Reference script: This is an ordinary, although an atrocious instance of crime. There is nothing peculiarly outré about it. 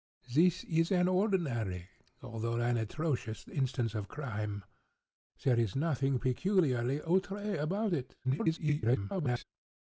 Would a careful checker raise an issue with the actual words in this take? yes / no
yes